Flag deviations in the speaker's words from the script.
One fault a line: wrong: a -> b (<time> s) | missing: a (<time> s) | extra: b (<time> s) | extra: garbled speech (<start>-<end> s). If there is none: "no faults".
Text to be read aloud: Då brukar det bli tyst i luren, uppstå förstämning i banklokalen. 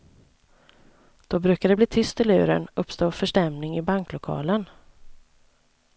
no faults